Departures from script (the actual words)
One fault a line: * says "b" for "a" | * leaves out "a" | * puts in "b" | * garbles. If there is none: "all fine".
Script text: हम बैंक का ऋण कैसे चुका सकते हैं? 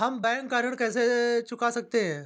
all fine